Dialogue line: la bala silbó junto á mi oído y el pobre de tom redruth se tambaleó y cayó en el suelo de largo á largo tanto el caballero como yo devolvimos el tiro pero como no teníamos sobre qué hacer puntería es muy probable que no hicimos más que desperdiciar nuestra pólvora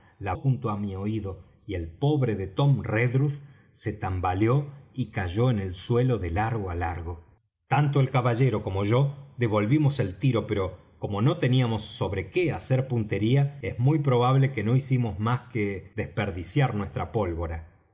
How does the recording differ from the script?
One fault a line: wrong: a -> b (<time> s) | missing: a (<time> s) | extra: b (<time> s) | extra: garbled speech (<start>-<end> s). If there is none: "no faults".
missing: bala silbó (0.3 s)